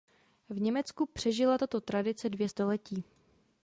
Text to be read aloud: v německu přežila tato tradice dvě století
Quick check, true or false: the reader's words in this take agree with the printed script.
true